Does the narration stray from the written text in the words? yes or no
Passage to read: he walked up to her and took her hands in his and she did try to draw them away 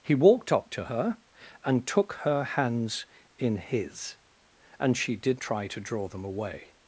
no